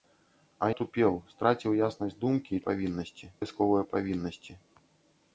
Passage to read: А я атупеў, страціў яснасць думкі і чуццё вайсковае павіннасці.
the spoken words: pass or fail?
fail